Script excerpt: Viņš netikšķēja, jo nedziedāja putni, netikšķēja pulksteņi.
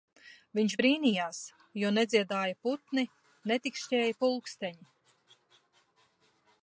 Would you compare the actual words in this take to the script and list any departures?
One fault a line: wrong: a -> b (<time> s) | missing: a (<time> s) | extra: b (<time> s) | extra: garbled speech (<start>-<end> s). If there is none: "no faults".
wrong: netikšķēja -> brīnījās (0.8 s)